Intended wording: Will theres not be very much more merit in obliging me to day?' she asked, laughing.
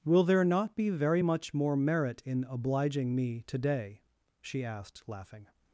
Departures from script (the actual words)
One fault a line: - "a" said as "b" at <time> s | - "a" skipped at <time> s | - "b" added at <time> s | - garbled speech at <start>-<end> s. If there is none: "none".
- "theres" said as "there" at 0.2 s